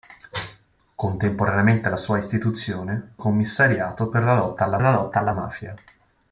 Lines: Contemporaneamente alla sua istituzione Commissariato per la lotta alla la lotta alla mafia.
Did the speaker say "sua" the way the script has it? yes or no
yes